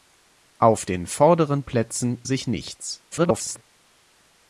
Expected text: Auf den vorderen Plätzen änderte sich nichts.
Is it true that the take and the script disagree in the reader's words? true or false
true